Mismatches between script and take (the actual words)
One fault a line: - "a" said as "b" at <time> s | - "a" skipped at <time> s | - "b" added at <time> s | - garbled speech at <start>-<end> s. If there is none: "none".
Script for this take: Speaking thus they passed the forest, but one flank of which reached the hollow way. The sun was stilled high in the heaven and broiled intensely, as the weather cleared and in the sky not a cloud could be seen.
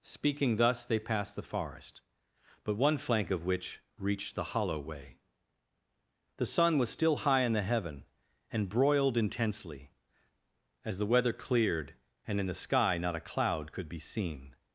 - "stilled" said as "still" at 6.9 s